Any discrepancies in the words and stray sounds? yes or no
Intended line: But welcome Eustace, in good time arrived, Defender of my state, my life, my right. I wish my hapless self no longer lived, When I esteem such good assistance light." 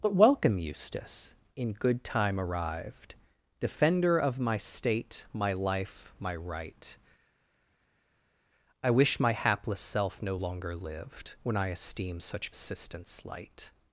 yes